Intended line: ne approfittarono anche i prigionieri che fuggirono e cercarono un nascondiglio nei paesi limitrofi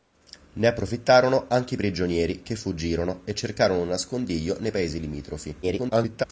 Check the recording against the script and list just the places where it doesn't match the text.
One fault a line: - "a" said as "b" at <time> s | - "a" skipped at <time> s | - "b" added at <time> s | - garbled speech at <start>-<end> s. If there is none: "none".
- garbled speech at 5.6-6.2 s